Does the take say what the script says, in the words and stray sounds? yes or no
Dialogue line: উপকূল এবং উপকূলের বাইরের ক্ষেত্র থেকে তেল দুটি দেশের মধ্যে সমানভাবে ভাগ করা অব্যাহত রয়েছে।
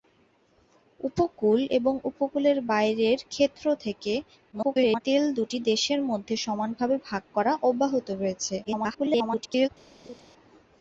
no